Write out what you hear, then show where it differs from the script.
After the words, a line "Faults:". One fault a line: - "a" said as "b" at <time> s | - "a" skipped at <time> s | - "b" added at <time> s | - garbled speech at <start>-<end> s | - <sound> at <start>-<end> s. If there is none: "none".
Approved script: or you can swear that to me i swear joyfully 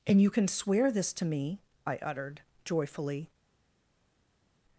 and you can swear this to me i uttered joyfully
Faults:
- "or" said as "and" at 0.1 s
- "that" said as "this" at 0.9 s
- "swear" said as "uttered" at 2.0 s